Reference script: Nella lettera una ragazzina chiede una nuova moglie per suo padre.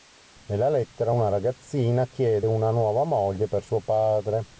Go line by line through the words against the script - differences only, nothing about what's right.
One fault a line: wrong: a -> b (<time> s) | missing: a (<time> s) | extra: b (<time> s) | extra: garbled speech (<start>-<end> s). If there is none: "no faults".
no faults